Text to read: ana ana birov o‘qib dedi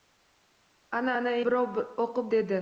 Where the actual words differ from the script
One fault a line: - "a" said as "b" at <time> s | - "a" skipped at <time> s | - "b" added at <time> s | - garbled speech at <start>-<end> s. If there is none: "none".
none